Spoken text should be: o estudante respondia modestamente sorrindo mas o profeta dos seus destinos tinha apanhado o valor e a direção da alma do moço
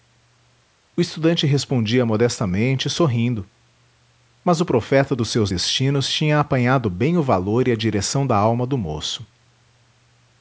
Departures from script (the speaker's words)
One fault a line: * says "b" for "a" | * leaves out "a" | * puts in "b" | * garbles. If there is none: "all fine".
* puts in "bem"